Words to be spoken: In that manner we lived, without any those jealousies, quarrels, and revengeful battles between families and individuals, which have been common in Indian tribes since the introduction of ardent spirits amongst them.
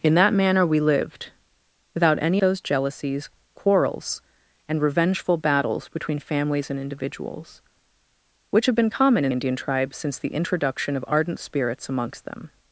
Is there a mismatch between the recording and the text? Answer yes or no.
no